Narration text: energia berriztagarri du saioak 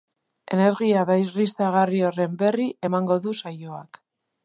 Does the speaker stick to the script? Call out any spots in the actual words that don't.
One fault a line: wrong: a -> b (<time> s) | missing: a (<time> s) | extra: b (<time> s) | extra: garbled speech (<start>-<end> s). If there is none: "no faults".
extra: horren berri emango (2.1 s)